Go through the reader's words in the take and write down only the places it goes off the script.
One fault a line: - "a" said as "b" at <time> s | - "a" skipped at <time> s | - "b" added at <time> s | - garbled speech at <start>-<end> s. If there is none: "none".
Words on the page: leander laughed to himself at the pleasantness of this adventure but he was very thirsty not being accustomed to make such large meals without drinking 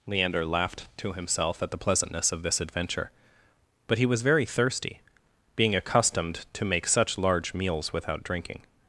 - "not" skipped at 5.0 s